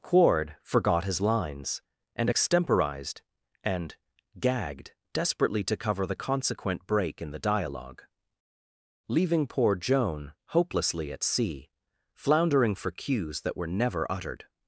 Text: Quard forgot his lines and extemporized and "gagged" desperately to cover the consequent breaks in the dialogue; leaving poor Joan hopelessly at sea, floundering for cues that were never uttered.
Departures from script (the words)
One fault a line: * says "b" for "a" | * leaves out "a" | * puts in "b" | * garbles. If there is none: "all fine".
* says "break" for "breaks"